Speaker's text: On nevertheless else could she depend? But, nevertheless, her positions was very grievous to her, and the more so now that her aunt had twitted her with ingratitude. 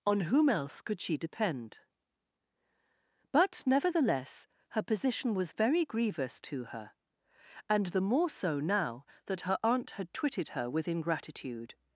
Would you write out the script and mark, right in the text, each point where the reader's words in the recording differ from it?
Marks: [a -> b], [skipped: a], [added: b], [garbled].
On [nevertheless -> whom] else could she depend? But, nevertheless, her [positions -> position] was very grievous to her, and the more so now that her aunt had twitted her with ingratitude.